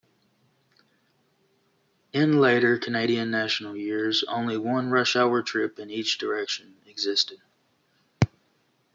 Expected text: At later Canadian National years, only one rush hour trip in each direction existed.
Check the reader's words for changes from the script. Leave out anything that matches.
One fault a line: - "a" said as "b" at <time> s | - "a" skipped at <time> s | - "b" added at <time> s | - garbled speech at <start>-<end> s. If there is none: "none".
- "At" said as "In" at 2.1 s